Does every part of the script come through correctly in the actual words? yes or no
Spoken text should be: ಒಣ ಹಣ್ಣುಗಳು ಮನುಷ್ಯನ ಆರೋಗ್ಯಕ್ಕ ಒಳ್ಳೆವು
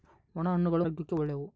no